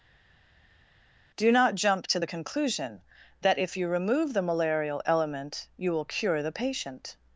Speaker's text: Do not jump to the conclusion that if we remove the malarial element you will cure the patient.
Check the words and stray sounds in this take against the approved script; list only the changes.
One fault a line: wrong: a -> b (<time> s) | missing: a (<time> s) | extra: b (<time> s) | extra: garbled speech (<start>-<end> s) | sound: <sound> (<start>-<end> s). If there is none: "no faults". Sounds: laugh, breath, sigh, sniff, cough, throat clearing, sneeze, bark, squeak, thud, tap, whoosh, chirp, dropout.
wrong: we -> you (3.7 s)